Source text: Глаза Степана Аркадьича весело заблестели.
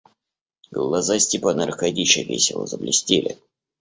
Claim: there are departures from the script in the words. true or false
false